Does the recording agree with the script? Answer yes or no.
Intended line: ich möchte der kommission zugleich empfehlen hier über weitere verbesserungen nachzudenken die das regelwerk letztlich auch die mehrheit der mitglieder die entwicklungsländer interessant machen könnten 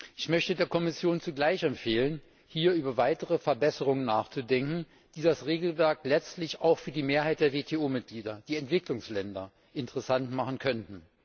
no